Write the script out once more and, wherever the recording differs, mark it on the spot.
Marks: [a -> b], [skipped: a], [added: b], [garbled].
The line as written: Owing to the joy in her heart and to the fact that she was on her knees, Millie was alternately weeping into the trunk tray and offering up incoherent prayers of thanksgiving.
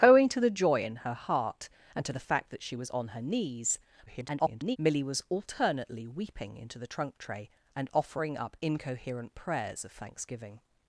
Owing to the joy in her heart and to the fact that she was on her knees, [garbled] Millie was alternately weeping into the trunk tray and offering up incoherent prayers of thanksgiving.